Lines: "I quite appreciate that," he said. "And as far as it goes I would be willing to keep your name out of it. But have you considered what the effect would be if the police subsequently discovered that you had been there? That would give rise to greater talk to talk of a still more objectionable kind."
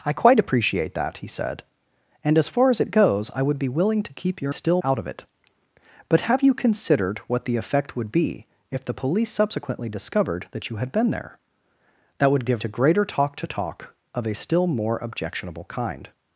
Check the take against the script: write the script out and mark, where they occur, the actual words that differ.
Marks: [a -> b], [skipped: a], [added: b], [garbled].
"I quite appreciate that," he said. "And as far as it goes I would be willing to keep your [name -> still] out of it. But have you considered what the effect would be if the police subsequently discovered that you had been there? That would give [skipped: rise] to greater talk to talk of a still more objectionable kind."